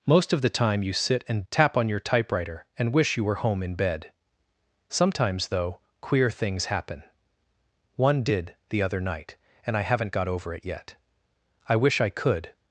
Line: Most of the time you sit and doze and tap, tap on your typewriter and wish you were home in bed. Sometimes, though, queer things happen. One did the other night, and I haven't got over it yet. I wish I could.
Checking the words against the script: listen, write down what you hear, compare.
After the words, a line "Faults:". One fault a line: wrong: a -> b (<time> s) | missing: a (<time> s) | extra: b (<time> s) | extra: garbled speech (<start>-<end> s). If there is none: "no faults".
Most of the time you sit and tap on your typewriter and wish you were home in bed. Sometimes, though, queer things happen. One did the other night, and I haven't got over it yet. I wish I could.
Faults:
missing: doze and tap (1.4 s)